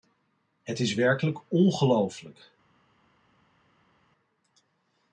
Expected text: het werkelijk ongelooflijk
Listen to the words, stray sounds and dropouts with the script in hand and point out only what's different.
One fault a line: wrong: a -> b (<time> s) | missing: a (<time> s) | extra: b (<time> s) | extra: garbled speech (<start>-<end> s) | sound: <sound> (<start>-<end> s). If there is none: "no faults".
extra: is (0.8 s)